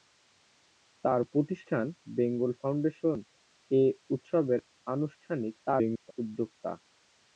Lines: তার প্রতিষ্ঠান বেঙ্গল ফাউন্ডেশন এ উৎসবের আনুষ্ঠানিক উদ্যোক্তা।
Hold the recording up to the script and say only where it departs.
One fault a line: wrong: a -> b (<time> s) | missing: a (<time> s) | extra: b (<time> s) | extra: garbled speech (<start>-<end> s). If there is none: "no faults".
extra: garbled speech (5.7-6.1 s)